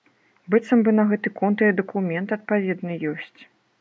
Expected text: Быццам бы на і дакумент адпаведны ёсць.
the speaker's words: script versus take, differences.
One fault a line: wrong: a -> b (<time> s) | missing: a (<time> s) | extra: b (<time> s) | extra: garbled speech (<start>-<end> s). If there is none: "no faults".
extra: гэты конт (1.1 s)